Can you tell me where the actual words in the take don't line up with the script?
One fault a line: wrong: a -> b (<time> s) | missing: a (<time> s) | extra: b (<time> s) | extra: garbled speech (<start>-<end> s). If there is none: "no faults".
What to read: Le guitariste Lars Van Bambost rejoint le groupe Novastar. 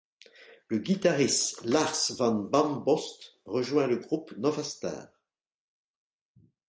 no faults